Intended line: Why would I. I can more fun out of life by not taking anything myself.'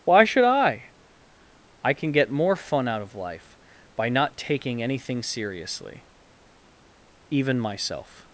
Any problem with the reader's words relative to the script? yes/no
yes